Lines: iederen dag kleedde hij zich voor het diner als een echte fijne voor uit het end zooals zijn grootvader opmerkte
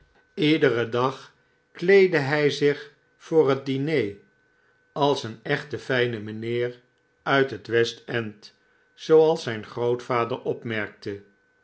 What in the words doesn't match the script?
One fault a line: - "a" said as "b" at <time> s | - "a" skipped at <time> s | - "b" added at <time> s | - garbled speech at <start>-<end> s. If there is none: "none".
- "voor" said as "mijnheer" at 6.2 s
- "west" added at 7.7 s